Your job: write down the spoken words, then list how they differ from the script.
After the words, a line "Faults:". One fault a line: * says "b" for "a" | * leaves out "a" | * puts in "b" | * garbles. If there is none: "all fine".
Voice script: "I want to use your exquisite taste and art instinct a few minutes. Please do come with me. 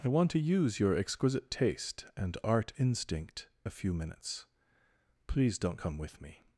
"I want to use your exquisite taste and art instinct a few minutes. Please don't come with me.
Faults:
* says "don't" for "do"